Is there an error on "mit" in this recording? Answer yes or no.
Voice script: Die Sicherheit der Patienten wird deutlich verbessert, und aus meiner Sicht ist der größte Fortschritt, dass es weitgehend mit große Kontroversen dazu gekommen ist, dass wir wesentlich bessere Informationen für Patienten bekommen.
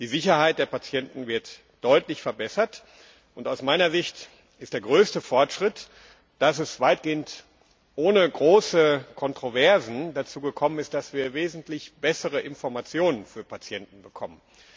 yes